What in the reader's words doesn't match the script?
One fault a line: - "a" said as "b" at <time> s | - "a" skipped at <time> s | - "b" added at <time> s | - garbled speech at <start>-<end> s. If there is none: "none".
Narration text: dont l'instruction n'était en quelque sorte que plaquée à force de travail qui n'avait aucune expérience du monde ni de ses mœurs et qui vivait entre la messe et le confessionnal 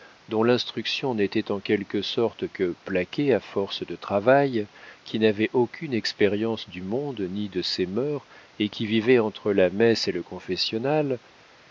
none